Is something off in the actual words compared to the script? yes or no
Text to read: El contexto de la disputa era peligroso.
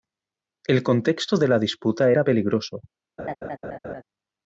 no